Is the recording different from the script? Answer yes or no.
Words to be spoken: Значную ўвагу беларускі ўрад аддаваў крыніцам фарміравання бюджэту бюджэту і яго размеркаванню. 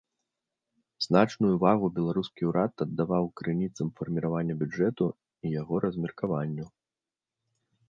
yes